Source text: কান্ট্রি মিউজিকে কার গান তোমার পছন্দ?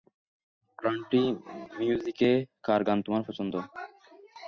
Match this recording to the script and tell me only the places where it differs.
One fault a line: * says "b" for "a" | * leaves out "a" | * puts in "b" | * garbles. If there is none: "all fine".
all fine